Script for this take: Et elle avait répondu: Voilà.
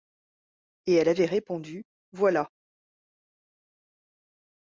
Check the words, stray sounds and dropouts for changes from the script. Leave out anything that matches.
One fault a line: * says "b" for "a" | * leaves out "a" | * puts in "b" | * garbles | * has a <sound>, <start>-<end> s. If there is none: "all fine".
all fine